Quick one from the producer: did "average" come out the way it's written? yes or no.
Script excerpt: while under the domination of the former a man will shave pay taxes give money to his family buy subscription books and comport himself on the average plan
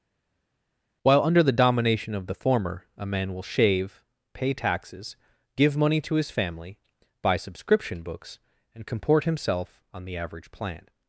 yes